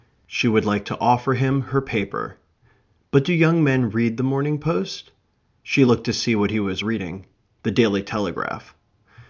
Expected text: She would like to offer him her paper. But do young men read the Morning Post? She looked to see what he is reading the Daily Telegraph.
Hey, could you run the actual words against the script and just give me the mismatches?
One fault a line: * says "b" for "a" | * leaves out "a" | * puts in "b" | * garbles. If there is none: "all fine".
* says "was" for "is"